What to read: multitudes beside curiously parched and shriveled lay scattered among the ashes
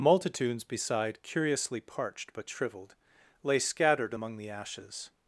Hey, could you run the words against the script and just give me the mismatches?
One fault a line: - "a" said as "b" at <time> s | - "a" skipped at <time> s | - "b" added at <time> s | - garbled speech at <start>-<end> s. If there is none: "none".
- "and" said as "but" at 2.3 s